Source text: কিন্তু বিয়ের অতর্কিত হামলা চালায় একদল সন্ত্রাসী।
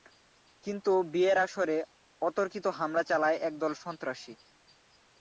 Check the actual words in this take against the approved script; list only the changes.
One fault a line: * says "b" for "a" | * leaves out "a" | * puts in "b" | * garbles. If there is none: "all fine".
* puts in "আসরে"